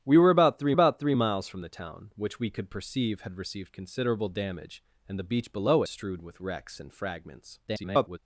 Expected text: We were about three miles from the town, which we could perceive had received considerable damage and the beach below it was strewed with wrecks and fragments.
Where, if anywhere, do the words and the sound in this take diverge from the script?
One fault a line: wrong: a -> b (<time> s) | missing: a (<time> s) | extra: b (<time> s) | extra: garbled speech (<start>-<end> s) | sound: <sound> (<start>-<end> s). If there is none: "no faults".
extra: about three (0.7 s)
missing: it was (5.8 s)
extra: garbled speech (7.7-8.2 s)